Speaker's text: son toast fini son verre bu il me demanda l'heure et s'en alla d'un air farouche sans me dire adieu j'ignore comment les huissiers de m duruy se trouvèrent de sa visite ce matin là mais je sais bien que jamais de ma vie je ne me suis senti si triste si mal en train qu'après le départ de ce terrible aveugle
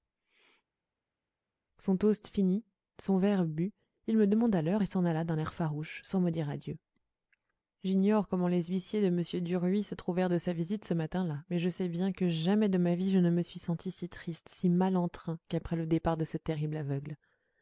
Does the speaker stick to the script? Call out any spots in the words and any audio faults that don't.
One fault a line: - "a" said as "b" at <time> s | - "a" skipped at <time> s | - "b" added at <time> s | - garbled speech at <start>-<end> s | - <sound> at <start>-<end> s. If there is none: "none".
none